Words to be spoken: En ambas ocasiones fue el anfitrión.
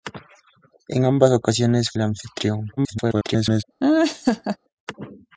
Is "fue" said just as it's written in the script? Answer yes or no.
no